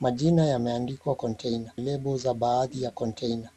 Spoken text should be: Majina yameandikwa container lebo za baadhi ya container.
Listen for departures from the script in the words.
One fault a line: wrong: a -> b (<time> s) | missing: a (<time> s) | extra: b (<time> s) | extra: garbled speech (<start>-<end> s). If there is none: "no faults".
no faults